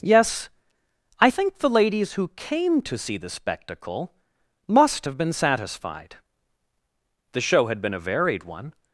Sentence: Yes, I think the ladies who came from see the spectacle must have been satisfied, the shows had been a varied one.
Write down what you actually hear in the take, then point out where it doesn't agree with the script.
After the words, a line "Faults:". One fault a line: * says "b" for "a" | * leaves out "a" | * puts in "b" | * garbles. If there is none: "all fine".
Yes, I think the ladies who came to see the spectacle must have been satisfied, the show had been a varied one.
Faults:
* says "to" for "from"
* says "show" for "shows"